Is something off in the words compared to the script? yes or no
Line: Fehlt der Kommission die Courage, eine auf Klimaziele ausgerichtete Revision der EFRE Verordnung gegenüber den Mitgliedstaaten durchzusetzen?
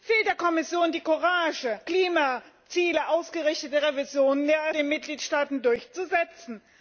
yes